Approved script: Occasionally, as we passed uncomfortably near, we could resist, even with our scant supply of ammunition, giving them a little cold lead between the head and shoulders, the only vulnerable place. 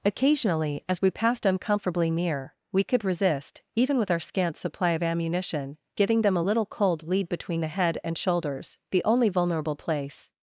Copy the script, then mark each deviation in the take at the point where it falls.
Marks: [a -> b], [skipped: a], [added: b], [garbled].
Occasionally, as we passed uncomfortably near, we could resist, even with our scant supply of ammunition, giving them a little cold lead between the head and shoulders, the only vulnerable place.